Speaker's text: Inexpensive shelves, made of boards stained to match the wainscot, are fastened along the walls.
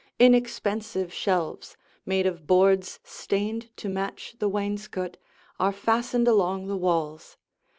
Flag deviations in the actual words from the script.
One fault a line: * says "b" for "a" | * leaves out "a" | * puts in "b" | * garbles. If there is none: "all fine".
all fine